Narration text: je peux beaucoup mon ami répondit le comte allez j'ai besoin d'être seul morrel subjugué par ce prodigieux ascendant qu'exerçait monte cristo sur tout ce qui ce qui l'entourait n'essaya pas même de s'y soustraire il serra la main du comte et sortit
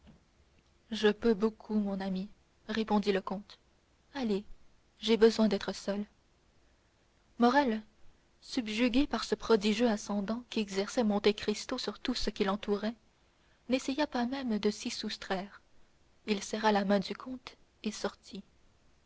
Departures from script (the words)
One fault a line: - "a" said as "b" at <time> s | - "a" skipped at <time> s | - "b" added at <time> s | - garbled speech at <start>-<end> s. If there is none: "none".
- "ce qui" skipped at 12.4 s